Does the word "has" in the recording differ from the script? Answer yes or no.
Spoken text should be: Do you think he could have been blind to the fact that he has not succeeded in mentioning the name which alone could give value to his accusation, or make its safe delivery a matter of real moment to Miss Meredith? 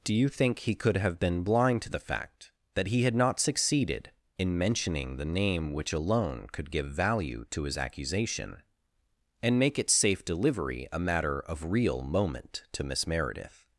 yes